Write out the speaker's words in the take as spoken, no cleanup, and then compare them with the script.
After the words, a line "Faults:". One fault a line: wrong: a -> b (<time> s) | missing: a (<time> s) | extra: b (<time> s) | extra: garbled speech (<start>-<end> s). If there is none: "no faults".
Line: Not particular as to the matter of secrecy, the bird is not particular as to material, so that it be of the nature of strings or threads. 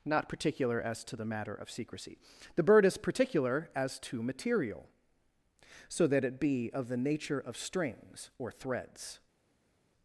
Not particular as to the matter of secrecy, the bird is particular as to material, so that it be of the nature of strings or threads.
Faults:
missing: not (3.0 s)